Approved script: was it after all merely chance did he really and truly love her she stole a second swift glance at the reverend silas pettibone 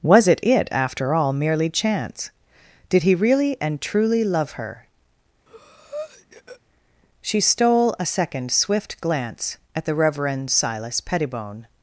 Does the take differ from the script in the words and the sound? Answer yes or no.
yes